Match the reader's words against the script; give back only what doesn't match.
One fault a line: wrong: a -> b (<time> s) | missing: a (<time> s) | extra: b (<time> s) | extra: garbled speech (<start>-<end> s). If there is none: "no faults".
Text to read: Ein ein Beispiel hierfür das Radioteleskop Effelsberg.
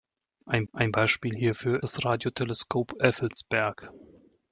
no faults